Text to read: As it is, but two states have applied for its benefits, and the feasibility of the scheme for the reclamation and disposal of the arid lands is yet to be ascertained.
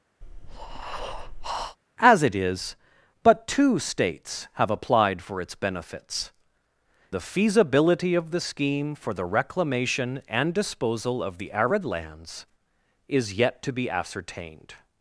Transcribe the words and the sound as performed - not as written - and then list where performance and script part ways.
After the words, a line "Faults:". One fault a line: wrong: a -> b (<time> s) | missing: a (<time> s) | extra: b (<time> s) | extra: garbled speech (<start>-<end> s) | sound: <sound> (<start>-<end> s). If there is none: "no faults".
As it is, but two states have applied for its benefits, the feasibility of the scheme for the reclamation and disposal of the arid lands is yet to be ascertained.
Faults:
sound: breath (0.2-1.8 s)
missing: and (6.3 s)